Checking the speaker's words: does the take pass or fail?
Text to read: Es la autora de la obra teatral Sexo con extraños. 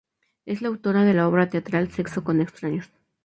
pass